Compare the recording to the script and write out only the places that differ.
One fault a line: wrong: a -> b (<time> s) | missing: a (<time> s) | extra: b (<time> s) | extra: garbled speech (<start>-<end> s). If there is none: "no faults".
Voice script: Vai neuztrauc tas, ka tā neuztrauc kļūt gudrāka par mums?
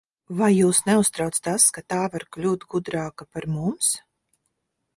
extra: jūs (0.5 s)
wrong: neuztrauc -> var (2.2 s)